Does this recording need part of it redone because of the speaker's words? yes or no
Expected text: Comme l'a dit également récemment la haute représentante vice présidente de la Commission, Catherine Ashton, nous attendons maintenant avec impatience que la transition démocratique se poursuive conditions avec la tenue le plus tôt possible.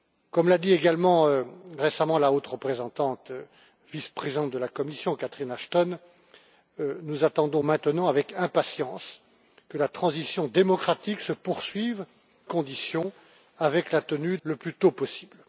no